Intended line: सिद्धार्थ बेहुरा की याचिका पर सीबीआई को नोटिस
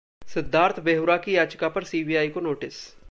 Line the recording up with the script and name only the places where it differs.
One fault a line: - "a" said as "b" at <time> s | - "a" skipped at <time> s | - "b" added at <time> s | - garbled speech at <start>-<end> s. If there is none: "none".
none